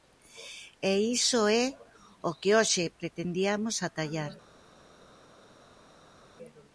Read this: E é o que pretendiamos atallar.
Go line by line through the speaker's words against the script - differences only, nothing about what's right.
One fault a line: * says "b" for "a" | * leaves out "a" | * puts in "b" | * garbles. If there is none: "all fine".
* puts in "iso"
* puts in "hoxe"